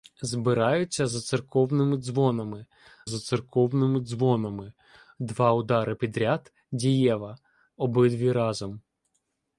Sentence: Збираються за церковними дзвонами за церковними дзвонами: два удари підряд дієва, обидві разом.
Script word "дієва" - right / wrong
right